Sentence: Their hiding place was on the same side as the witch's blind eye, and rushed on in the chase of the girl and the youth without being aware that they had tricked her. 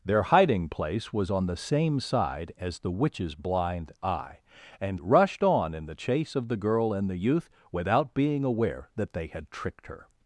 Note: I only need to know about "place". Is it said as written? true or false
true